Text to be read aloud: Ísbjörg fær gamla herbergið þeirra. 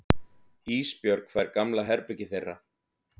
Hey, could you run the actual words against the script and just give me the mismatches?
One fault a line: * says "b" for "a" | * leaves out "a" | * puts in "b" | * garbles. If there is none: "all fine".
all fine